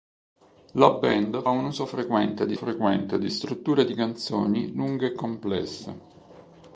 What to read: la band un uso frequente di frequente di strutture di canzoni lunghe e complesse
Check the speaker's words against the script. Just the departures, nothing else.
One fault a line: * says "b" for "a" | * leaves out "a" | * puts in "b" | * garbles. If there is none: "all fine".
all fine